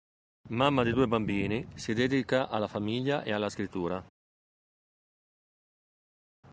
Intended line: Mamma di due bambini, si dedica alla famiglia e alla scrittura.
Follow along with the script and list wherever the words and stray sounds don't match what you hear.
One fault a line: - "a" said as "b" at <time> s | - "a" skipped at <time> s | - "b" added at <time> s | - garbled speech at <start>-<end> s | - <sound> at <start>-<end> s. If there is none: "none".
none